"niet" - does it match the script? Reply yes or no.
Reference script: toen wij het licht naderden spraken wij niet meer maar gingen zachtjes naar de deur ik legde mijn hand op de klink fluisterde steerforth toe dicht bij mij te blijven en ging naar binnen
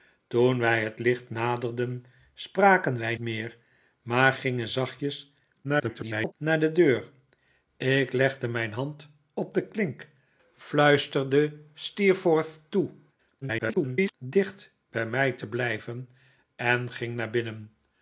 no